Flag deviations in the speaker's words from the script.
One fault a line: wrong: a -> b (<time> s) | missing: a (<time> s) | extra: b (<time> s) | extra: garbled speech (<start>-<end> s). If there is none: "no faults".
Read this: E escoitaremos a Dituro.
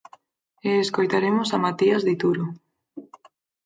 extra: Matías (1.6 s)